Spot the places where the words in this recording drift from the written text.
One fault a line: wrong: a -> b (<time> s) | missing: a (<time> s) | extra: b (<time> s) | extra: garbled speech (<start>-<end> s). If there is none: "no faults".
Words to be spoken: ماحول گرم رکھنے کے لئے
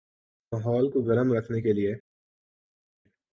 extra: کو (0.9 s)